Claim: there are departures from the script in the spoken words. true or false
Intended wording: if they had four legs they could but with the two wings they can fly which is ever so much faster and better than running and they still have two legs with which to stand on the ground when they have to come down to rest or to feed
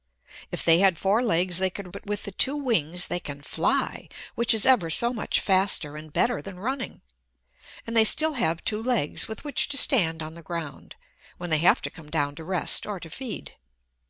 false